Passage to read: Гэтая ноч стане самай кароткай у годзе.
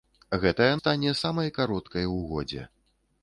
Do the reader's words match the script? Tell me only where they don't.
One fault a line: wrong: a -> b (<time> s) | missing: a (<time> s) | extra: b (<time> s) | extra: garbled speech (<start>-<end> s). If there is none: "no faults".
missing: ноч (0.7 s)